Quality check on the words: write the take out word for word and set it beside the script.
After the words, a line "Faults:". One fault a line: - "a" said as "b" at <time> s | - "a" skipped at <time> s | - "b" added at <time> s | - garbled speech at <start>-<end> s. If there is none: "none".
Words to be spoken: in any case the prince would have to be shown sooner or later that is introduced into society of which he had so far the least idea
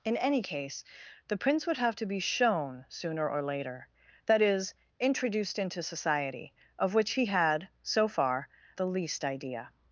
in any case the prince would have to be shown sooner or later that is introduced into society of which he had so far the least idea
Faults:
none